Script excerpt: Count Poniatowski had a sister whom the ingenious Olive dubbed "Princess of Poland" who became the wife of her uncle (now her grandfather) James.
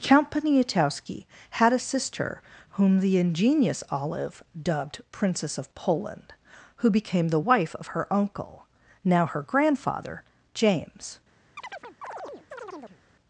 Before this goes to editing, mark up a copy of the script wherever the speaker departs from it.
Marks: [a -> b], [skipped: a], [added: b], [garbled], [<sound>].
Count Poniatowski had a sister whom the ingenious Olive dubbed "Princess of Poland" who became the wife of her uncle (now her grandfather) James. [chirp]